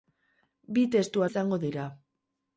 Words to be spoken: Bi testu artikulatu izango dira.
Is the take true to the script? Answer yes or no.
no